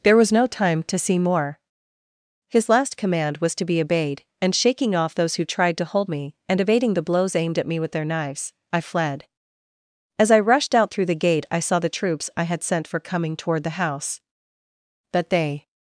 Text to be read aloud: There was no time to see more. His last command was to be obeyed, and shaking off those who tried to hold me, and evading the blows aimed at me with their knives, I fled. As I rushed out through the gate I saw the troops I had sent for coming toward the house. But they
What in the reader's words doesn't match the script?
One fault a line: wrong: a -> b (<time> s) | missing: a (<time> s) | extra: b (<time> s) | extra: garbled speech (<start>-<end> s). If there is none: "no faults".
no faults